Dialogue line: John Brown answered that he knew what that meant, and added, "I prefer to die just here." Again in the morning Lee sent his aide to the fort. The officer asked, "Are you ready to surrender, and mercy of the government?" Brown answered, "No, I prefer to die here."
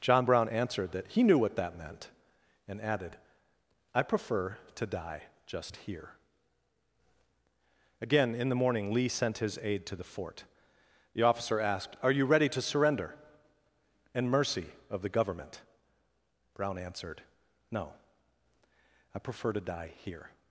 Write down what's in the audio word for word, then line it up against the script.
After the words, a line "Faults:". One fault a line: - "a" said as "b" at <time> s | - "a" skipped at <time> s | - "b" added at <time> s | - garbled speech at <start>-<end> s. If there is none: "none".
John Brown answered that he knew what that meant, and added, "I prefer to die just here." Again in the morning Lee sent his aide to the fort. The officer asked, "Are you ready to surrender, and mercy of the government?" Brown answered, "No, I prefer to die here."
Faults:
none